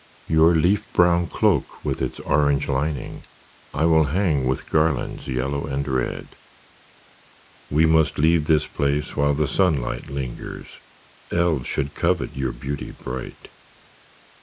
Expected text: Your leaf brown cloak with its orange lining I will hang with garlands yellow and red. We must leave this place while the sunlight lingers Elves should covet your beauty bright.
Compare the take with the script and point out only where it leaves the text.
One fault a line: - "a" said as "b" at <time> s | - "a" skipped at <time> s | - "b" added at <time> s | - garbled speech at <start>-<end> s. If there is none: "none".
none